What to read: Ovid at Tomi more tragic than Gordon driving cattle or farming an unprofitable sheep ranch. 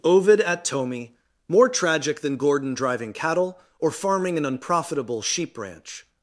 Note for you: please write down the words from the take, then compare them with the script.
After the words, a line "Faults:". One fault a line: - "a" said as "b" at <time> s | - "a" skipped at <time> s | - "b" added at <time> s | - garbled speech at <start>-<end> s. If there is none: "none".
Ovid at Tomi more tragic than Gordon driving cattle or farming an unprofitable sheep ranch.
Faults:
none